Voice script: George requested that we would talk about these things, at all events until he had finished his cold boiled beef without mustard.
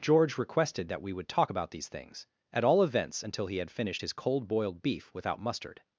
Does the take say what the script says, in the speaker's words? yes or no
yes